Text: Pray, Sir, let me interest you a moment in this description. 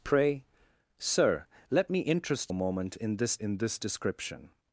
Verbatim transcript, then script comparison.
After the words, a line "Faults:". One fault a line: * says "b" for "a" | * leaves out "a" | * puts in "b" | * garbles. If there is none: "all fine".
Pray, Sir, let me interest a moment in this in this description.
Faults:
* leaves out "you"
* puts in "in this"